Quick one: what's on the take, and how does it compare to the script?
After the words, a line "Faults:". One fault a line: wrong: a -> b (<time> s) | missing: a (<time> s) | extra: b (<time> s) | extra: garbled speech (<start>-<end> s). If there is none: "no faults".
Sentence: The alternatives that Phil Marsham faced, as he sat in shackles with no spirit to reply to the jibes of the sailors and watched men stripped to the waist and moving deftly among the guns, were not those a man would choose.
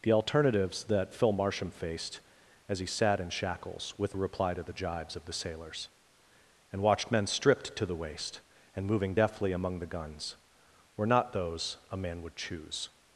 The alternatives that Phil Marsham faced, as he sat in shackles with reply to the jibes of the sailors and watched men stripped to the waist and moving deftly among the guns, were not those a man would choose.
Faults:
missing: no spirit to (4.2 s)